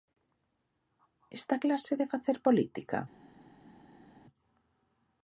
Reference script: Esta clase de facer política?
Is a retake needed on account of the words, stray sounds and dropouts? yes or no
no